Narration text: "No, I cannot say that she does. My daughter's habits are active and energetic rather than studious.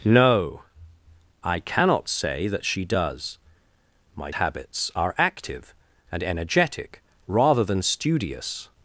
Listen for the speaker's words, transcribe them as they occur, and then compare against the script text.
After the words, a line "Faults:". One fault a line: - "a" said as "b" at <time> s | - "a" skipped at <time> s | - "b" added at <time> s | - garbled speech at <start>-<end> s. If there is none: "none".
"No, I cannot say that she does. My habits are active and energetic rather than studious.
Faults:
- "daughter's" skipped at 4.3 s